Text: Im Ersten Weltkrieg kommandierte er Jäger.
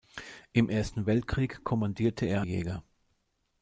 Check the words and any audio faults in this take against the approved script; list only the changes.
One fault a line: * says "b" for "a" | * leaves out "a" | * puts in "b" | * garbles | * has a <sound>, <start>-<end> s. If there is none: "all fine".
all fine